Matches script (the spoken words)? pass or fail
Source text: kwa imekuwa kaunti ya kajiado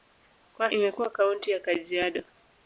pass